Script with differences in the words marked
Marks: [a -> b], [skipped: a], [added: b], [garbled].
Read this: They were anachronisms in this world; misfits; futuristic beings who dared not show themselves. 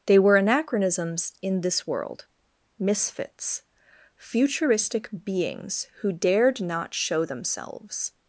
They were anachronisms in this world; misfits; futuristic beings who dared not show themselves.